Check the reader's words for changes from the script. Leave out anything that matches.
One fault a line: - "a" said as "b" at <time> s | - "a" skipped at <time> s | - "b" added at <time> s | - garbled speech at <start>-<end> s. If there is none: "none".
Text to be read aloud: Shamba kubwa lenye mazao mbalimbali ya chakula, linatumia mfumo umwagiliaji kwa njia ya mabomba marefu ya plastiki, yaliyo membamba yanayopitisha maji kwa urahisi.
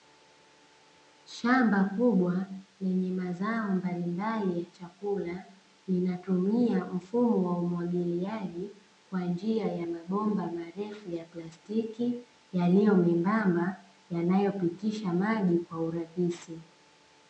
- "wa" added at 7.4 s